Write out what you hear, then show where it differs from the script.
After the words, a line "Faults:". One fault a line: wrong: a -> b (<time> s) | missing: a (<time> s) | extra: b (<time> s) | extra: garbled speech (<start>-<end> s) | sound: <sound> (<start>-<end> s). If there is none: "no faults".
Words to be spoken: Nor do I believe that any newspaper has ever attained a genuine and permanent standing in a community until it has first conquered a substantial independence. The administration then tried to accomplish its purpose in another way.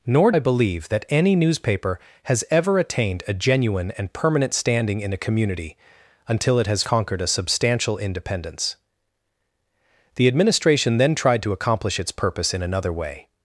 Nor I believe that any newspaper has ever attained a genuine and permanent standing in a community until it has conquered a substantial independence. The administration then tried to accomplish its purpose in another way.
Faults:
missing: do (0.3 s)
missing: first (6.8 s)